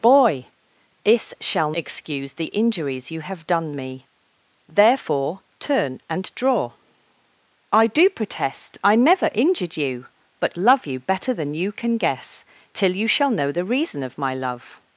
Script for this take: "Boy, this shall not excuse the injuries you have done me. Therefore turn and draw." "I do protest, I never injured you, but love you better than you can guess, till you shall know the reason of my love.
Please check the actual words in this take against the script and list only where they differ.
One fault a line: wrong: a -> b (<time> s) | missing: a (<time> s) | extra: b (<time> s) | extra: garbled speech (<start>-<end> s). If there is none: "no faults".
missing: not (1.7 s)